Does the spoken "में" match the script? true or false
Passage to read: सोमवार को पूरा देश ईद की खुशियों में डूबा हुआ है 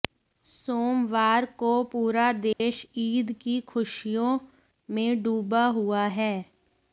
true